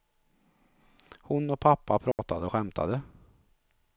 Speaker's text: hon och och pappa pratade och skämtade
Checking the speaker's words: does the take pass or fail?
fail